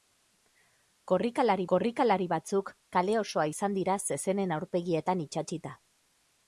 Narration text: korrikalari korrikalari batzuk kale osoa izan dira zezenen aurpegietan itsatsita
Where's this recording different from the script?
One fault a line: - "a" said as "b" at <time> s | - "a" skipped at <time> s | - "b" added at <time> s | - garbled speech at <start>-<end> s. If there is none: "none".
none